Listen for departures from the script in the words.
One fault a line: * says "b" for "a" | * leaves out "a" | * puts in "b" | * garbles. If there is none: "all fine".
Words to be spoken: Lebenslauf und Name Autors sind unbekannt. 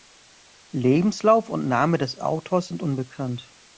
* puts in "des"